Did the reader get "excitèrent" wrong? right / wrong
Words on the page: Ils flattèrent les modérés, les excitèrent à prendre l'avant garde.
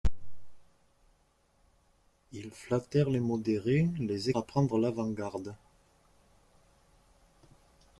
wrong